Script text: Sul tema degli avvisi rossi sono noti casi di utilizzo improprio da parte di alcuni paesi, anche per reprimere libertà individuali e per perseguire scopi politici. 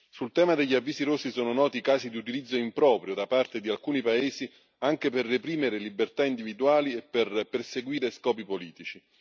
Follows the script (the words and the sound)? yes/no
yes